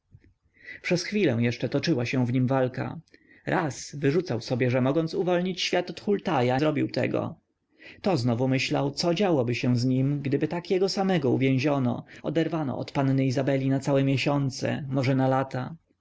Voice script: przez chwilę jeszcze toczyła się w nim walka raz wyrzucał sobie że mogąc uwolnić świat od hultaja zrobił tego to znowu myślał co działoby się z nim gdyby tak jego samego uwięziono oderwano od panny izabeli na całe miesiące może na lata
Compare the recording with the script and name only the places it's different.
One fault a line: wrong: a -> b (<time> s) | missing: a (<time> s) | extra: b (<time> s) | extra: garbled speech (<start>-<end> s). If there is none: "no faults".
no faults